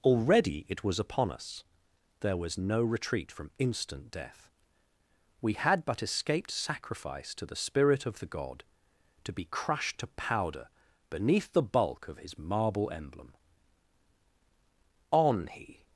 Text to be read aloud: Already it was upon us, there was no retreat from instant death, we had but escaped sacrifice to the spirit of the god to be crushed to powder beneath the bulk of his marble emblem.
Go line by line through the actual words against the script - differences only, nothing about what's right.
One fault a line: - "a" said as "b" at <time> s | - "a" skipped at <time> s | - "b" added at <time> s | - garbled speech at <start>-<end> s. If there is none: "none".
- "On he" added at 15.1 s